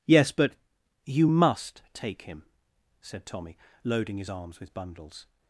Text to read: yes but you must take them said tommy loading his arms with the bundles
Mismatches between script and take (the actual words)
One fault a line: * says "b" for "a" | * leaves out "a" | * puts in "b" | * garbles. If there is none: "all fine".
* says "him" for "them"
* leaves out "the"